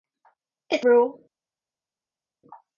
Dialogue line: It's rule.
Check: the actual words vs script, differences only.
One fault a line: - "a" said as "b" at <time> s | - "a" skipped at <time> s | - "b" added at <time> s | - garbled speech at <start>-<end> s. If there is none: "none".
none